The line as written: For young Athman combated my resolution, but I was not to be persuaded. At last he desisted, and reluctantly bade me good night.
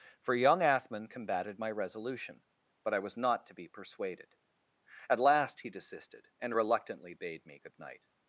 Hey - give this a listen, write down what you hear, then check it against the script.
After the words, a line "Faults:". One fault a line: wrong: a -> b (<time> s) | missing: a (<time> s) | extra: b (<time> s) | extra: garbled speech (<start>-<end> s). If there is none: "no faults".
For young Athman combated my resolution, but I was not to be persuaded. At last he desisted, and reluctantly bade me good night.
Faults:
no faults